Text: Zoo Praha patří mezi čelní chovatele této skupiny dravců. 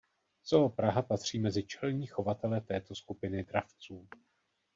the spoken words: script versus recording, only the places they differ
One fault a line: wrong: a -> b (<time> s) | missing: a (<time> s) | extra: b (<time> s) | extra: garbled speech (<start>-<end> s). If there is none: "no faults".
no faults